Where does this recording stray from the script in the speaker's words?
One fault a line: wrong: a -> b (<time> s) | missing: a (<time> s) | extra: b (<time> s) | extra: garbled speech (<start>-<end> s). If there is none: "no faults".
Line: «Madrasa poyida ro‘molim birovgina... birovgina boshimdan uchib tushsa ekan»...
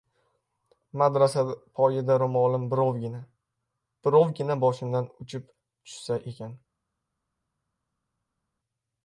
no faults